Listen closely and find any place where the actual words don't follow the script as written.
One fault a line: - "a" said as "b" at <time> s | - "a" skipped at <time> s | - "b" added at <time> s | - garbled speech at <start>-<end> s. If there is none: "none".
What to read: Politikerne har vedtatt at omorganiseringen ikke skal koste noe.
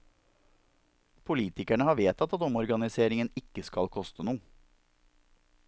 none